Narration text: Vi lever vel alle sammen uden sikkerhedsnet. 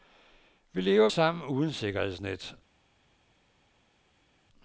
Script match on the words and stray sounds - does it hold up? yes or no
no